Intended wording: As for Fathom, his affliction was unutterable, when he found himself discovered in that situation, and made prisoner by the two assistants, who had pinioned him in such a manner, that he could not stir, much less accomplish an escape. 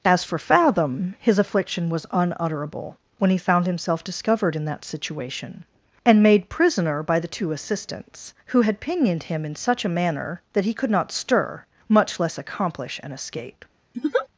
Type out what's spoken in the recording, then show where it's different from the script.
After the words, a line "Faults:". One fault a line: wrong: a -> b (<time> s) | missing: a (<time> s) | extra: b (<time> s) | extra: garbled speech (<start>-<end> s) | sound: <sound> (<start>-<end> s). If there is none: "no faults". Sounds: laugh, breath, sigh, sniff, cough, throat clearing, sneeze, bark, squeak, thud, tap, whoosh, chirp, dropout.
As for Fathom, his affliction was unutterable, when he found himself discovered in that situation, and made prisoner by the two assistants, who had pinioned him in such a manner, that he could not stir, much less accomplish an escape.
Faults:
sound: laugh (13.9-14.3 s)